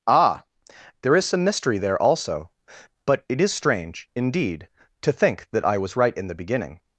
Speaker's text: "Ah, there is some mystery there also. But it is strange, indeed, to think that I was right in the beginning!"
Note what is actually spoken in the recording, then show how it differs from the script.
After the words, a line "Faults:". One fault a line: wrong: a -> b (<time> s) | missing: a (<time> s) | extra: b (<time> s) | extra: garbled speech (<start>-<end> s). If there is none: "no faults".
"Ah, there is some mystery there also. But it is strange, indeed, to think that I was right in the beginning!"
Faults:
no faults